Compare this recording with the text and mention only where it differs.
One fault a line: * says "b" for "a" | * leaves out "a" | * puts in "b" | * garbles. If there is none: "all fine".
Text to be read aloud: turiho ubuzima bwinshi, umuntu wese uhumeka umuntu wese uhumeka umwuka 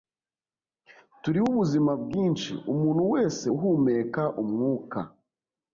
* leaves out "umuntu wese uhumeka"